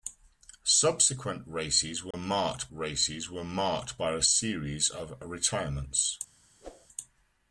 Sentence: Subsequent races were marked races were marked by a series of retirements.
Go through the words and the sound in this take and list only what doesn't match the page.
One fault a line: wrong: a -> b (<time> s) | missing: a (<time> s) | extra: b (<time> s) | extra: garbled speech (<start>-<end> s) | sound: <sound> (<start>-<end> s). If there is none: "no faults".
sound: dropout (2.1-2.1 s)
sound: whoosh (6.6-6.9 s)